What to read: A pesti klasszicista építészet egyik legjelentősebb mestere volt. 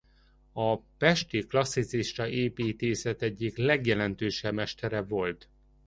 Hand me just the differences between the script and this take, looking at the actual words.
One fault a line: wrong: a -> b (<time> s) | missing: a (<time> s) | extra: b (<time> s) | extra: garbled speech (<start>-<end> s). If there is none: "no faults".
no faults